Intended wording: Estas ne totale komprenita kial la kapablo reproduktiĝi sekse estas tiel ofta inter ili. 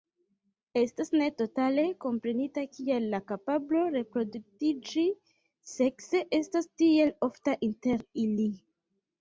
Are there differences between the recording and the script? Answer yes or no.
no